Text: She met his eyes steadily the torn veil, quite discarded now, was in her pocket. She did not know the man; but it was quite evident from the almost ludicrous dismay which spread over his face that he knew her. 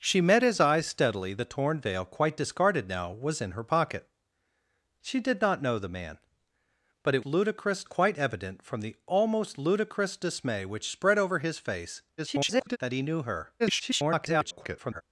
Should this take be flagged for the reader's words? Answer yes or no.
yes